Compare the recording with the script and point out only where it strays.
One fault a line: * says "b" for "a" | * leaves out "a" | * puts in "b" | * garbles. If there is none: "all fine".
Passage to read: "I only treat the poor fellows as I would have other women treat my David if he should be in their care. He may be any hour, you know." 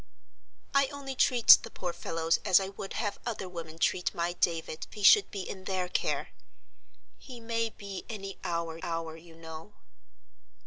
* leaves out "if"
* puts in "hour"